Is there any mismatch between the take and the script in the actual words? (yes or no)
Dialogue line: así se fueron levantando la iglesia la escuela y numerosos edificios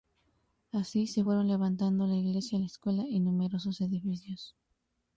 no